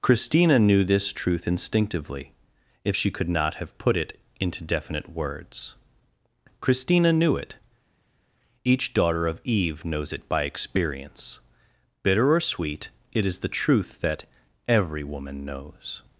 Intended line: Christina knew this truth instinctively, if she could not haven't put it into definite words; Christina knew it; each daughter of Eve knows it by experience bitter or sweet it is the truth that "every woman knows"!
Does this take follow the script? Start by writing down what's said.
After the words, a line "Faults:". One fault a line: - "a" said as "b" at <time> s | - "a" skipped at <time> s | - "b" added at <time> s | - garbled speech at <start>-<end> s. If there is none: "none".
Christina knew this truth instinctively, if she could not have put it into definite words; Christina knew it; each daughter of Eve knows it by experience bitter or sweet it is the truth that "every woman knows"!
Faults:
- "haven't" said as "have" at 3.5 s